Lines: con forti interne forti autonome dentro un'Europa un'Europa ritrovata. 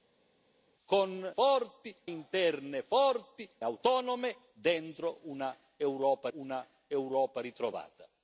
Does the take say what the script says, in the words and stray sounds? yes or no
yes